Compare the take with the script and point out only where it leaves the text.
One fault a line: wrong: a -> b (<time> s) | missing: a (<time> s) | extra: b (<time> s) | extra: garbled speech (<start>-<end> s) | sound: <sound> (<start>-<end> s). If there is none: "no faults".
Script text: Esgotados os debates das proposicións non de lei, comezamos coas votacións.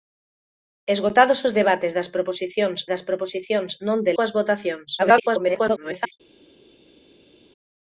extra: das proposicións (2.9 s)
missing: lei comezamos (4.1 s)
extra: garbled speech (5.0-6.1 s)